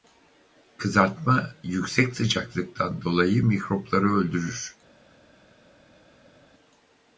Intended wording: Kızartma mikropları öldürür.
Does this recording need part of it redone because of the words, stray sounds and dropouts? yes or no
yes